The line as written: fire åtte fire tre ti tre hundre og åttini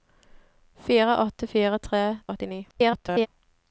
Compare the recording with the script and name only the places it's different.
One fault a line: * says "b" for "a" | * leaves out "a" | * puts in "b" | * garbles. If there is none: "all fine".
* leaves out "ti tre hundre"
* garbles